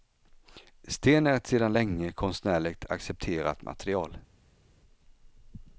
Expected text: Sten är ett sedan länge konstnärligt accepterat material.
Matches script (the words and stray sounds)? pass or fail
pass